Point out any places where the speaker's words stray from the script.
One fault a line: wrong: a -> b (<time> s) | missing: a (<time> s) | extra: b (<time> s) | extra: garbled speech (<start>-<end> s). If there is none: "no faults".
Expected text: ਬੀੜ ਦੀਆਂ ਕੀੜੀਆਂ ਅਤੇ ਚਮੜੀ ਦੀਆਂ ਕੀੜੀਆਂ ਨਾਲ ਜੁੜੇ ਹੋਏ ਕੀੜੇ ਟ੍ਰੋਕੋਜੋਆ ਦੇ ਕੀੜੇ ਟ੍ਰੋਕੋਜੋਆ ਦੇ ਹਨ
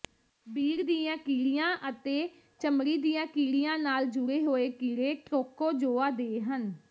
missing: ਕੀੜੇ ਟ੍ਰੋਕੋਜੋਆ ਦੇ (6.4 s)